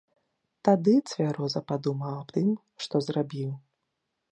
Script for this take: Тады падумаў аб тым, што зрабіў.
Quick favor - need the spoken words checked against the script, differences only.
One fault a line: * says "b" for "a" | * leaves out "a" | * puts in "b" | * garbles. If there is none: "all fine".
* puts in "цвяроза"